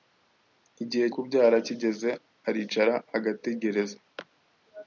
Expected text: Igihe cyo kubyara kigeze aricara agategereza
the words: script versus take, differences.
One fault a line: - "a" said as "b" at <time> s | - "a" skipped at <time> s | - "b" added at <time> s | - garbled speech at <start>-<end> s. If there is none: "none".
- "cyo" skipped at 1.1 s